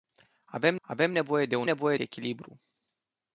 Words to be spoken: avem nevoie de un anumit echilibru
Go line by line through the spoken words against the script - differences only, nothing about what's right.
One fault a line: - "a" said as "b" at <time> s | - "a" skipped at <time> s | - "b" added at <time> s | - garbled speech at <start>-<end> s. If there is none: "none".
- "avem" added at 0.8 s
- "anumit" said as "nevoie" at 1.6 s